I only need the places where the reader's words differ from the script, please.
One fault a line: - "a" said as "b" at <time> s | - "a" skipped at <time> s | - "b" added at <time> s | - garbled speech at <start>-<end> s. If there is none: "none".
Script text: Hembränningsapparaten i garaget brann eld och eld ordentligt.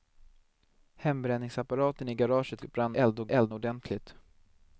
none